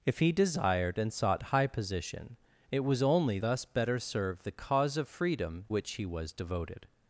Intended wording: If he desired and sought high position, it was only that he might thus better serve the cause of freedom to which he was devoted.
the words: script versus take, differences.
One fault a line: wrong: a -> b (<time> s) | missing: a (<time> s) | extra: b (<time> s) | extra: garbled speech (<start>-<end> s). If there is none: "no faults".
missing: that he might (3.4 s)
missing: to (5.7 s)